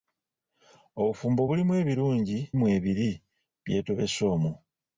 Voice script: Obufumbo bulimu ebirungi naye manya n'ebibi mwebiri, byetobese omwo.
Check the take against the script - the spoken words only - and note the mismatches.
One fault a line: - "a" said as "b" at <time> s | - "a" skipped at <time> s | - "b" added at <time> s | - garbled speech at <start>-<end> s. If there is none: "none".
- "naye manya n'ebibi" skipped at 2.4 s